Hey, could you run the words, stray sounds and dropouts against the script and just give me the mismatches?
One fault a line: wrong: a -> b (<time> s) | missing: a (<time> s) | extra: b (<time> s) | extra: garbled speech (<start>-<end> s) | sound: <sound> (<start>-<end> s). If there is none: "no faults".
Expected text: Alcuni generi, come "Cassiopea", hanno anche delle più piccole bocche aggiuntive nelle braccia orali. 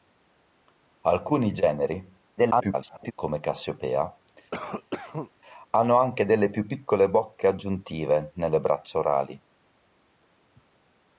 extra: garbled speech (2.4-3.1 s)
sound: cough (4.5-5.3 s)